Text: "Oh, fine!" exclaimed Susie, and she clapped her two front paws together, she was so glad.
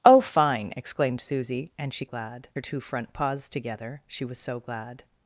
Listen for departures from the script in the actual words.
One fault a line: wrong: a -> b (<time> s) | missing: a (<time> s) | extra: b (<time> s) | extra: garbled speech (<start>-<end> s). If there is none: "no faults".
wrong: clapped -> glad (2.0 s)